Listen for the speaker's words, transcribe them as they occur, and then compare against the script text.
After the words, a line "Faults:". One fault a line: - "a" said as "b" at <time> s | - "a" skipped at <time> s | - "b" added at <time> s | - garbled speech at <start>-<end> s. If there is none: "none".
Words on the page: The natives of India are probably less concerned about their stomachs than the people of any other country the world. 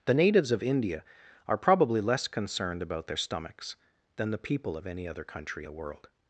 The natives of India are probably less concerned about their stomachs than the people of any other country the world.
Faults:
none